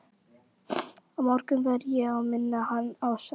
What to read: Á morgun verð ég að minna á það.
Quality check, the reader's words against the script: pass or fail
fail